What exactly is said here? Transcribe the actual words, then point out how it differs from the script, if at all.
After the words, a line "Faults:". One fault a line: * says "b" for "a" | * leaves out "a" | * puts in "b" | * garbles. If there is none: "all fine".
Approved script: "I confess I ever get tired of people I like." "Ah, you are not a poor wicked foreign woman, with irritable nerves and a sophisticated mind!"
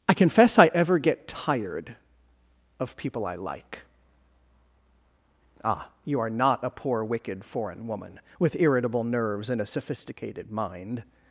"I confess I ever get tired of people I like." "Ah, you are not a poor wicked foreign woman, with irritable nerves and a sophisticated mind!"
Faults:
all fine